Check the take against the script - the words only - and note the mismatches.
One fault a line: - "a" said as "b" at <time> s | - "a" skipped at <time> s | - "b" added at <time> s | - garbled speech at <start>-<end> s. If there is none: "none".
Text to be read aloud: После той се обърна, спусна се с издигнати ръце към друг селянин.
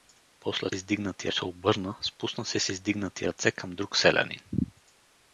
- "той" said as "издигнати" at 0.7 s